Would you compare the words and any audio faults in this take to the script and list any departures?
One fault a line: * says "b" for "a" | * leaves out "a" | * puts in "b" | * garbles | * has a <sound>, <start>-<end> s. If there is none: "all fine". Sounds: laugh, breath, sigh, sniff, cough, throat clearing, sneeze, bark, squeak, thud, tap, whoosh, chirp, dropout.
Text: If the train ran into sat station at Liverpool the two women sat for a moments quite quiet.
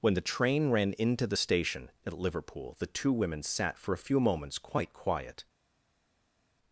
* says "When" for "If"
* says "the" for "sat"
* puts in "few"